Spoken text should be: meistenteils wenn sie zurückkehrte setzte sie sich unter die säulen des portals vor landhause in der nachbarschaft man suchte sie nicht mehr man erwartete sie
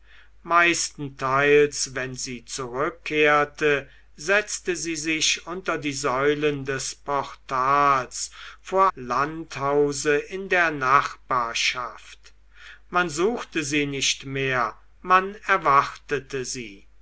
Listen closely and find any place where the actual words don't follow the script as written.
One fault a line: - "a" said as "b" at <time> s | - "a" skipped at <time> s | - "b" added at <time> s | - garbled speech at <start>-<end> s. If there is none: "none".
none